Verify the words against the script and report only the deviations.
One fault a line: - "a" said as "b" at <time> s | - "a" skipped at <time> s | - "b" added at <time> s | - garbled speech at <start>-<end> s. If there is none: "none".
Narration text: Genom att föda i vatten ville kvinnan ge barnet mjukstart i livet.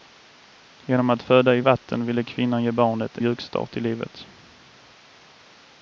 none